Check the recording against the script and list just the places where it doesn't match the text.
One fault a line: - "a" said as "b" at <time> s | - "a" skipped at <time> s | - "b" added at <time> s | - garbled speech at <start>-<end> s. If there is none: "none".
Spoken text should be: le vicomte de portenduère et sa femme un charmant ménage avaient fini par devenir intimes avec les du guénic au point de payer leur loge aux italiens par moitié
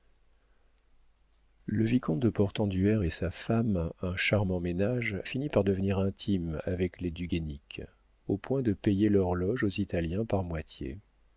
- "avaient" skipped at 5.2 s